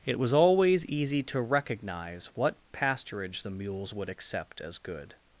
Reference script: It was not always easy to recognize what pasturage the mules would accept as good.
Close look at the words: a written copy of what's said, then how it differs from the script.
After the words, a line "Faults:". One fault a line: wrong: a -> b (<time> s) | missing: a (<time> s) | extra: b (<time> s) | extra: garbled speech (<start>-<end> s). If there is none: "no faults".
It was always easy to recognize what pasturage the mules would accept as good.
Faults:
missing: not (0.3 s)